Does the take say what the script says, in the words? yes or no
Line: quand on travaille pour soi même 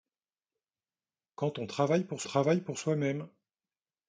no